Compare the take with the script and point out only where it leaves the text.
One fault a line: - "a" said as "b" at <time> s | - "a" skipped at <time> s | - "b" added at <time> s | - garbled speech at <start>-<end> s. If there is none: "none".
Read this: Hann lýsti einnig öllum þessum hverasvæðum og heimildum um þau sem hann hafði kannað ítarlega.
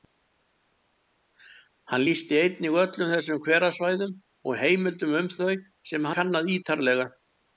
- "hann hafði" skipped at 6.1 s